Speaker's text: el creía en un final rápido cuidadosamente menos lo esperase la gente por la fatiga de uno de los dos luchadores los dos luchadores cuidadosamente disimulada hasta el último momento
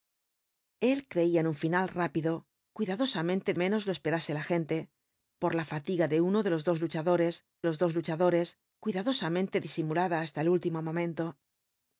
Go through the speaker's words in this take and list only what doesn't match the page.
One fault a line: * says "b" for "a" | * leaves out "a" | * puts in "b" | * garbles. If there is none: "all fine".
all fine